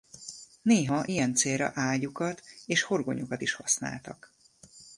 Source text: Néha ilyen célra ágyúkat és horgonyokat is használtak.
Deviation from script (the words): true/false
false